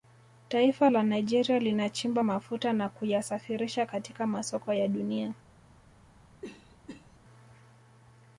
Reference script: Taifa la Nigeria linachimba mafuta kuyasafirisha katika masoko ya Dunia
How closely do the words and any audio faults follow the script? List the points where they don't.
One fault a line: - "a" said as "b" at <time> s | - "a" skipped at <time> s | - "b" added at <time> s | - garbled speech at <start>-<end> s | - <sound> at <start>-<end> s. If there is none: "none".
- "na" added at 2.7 s
- cough at 6.4-7.2 s